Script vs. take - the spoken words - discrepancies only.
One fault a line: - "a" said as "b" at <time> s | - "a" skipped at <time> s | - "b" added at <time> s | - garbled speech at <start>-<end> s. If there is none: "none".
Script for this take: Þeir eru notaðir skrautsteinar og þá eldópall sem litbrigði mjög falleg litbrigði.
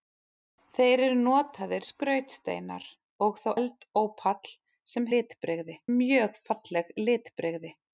none